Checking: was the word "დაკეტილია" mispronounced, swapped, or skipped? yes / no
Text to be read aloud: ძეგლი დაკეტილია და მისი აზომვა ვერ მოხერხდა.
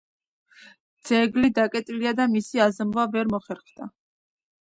no